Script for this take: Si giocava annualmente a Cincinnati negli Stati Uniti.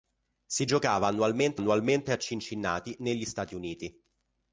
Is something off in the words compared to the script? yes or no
yes